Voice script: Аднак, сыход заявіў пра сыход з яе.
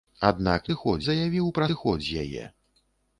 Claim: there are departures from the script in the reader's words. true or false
false